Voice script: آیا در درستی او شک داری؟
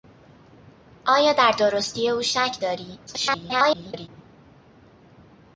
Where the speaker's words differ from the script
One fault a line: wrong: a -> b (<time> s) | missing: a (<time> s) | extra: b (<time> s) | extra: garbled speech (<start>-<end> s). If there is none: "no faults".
extra: garbled speech (3.1-4.1 s)